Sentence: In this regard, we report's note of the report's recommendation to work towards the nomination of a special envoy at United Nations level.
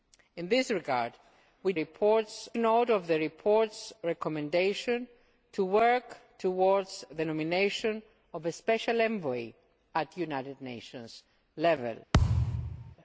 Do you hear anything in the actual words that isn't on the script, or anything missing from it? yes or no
no